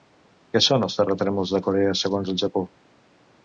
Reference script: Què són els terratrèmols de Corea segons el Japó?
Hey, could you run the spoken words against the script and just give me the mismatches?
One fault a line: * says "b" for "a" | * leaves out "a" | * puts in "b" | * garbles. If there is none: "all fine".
all fine